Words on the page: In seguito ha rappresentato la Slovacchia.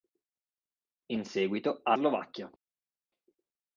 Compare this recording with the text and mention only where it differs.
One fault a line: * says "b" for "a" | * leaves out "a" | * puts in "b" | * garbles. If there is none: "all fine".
* leaves out "rappresentato la"